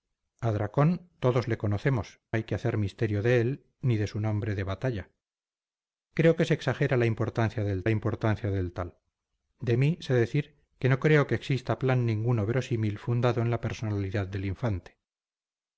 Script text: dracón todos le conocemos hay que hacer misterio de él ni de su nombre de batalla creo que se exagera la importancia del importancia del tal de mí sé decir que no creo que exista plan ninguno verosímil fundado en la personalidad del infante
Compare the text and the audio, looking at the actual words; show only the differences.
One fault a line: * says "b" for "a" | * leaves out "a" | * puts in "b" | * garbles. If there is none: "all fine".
all fine